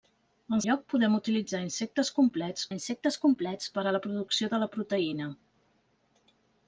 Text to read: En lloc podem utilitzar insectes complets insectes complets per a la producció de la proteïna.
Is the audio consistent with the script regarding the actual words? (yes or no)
yes